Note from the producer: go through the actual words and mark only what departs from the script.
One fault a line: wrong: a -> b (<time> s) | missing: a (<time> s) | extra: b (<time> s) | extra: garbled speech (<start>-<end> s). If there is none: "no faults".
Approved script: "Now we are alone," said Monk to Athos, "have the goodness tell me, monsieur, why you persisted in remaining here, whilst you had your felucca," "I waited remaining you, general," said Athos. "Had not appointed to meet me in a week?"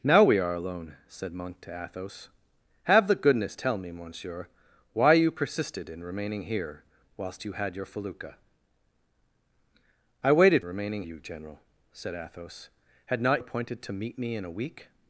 no faults